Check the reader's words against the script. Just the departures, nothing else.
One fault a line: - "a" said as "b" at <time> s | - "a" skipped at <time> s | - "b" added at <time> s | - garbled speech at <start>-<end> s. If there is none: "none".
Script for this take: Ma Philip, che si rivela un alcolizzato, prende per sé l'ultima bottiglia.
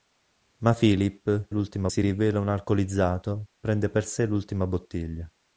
- "che" said as "l'ultima" at 1.5 s